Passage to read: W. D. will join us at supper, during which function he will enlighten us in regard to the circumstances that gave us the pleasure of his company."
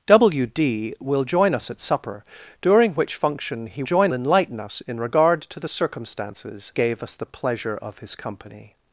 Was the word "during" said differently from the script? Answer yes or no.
no